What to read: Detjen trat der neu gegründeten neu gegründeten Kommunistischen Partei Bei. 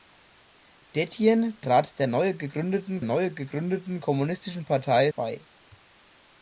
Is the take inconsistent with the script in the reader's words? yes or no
no